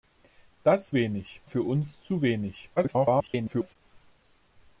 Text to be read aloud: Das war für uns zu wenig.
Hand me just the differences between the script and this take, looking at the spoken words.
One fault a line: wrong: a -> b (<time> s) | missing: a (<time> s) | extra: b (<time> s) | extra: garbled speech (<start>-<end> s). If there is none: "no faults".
wrong: war -> wenig (0.9 s)
extra: garbled speech (2.8-3.8 s)